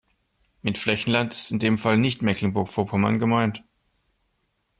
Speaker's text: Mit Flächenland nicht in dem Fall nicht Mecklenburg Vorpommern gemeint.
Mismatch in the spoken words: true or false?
true